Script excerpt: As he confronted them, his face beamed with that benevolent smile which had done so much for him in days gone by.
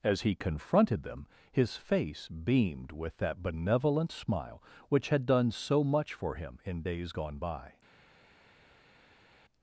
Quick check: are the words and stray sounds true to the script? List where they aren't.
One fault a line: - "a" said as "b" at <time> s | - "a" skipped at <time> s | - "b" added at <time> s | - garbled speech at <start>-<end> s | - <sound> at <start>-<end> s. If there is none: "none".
none